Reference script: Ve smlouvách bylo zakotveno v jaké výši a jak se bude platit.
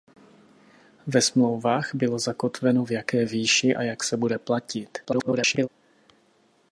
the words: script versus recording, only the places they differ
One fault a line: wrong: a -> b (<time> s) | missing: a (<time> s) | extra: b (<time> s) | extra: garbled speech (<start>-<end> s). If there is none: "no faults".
extra: garbled speech (5.0-5.7 s)